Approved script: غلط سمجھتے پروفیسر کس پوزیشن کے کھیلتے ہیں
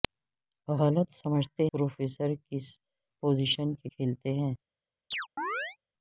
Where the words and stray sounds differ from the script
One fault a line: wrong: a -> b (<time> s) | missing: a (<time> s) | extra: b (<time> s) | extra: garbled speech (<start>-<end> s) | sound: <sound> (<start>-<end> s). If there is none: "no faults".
sound: chirp (5.1-5.8 s)